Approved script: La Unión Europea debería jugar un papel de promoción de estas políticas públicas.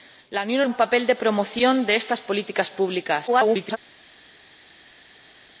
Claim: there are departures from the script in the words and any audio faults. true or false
true